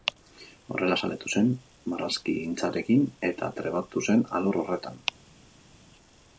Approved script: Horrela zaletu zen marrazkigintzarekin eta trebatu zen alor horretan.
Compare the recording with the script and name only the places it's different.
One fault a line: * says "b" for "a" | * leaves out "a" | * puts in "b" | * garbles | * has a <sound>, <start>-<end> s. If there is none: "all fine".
all fine